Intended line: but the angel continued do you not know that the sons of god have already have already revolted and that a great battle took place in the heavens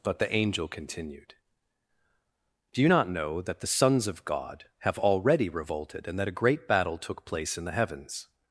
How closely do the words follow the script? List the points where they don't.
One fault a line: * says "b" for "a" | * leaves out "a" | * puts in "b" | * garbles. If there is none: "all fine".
* leaves out "have already"